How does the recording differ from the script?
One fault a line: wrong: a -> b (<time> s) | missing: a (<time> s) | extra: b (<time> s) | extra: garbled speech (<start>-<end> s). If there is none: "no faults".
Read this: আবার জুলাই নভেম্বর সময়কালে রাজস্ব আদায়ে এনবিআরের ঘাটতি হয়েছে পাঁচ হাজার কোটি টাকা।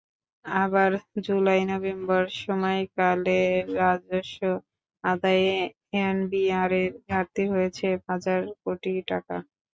missing: পাঁচ (7.9 s)